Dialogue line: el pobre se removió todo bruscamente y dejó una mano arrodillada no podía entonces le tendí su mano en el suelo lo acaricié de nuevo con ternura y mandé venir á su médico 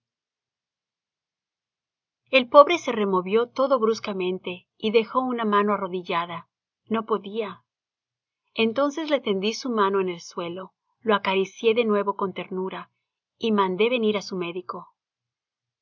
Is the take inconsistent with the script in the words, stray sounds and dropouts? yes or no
no